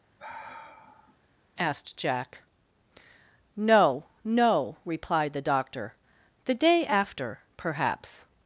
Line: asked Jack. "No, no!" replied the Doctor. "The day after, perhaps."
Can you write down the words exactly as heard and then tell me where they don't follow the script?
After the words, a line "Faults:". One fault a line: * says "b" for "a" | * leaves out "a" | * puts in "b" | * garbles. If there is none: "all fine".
asked Jack. "No, no!" replied the Doctor. "The day after, perhaps."
Faults:
all fine